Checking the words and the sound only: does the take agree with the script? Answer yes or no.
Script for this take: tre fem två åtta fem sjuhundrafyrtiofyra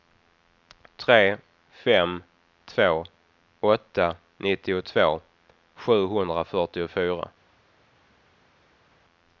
no